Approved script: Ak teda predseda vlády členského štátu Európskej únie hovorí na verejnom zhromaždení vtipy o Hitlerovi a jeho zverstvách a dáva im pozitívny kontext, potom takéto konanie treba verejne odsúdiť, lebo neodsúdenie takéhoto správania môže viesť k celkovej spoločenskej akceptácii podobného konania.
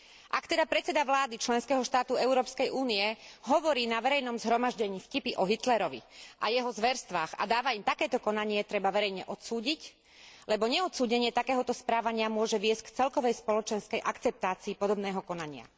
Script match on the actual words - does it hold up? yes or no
no